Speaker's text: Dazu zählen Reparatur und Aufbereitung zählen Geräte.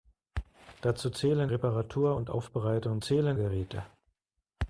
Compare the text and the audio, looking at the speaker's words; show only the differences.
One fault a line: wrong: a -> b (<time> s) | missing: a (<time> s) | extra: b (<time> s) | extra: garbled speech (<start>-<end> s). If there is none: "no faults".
no faults